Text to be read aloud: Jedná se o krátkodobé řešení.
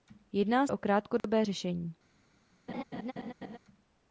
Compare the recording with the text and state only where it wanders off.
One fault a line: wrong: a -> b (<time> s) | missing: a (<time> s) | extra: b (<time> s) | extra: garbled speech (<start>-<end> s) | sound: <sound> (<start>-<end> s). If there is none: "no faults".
missing: se (0.7 s)
sound: dropout (1.2-1.2 s)
sound: laugh (2.7-3.6 s)